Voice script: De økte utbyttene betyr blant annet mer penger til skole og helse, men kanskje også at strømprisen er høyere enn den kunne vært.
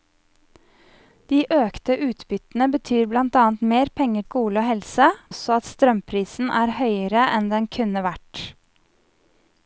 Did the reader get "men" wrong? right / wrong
wrong